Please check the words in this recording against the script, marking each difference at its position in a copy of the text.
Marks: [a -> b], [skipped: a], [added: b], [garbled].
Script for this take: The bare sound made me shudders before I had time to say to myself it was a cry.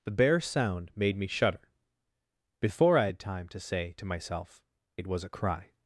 The bare sound made me [shudders -> shudder] before I had time to say to myself it was a cry.